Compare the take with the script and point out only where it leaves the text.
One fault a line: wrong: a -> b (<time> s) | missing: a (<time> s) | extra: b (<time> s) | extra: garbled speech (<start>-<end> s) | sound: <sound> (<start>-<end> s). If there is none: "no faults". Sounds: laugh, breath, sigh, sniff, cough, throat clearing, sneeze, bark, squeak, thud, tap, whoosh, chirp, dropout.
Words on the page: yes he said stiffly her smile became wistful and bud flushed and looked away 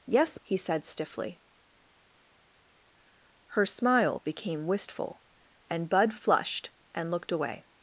no faults